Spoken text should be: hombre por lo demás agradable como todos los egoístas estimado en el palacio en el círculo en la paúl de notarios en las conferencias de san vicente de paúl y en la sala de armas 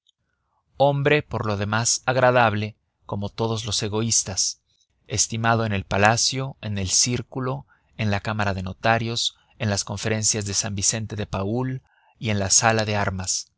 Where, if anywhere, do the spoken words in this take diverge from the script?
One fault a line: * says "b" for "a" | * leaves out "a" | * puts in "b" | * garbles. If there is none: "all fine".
* says "cámara" for "paúl"